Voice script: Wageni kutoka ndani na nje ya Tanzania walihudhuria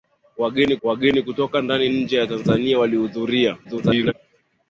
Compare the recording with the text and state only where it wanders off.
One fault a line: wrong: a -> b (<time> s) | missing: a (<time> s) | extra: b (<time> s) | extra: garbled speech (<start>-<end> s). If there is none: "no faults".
extra: wageni (0.8 s)
missing: na (1.9 s)
extra: garbled speech (3.6-4.1 s)